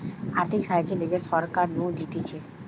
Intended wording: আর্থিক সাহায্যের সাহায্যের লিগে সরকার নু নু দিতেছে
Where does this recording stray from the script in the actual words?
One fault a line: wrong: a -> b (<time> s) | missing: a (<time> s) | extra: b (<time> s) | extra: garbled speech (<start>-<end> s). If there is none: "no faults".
missing: সাহায্যের (1.0 s)
missing: নু (1.8 s)